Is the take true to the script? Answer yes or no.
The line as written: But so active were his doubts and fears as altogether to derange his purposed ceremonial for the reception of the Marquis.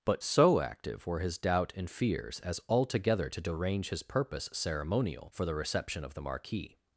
no